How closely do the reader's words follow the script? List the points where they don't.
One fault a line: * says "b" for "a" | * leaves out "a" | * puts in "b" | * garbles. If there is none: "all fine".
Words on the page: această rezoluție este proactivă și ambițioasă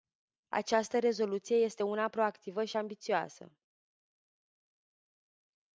* puts in "una"